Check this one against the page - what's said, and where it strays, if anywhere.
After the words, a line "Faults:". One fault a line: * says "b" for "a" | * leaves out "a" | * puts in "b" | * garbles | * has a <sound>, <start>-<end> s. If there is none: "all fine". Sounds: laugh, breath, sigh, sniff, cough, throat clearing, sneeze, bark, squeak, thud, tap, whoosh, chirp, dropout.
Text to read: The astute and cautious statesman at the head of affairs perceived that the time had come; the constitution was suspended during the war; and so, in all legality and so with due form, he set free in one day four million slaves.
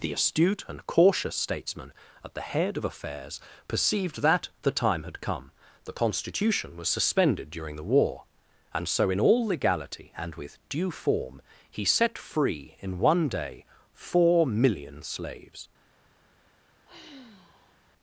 The astute and cautious statesman at the head of affairs perceived that the time had come; the constitution was suspended during the war; and so, in all legality and with due form, he set free in one day four million slaves.
Faults:
* leaves out "so"
* has a sigh, 16.9-17.8 s